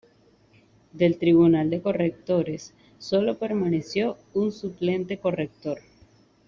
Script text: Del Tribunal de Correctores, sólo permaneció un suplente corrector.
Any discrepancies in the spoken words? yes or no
no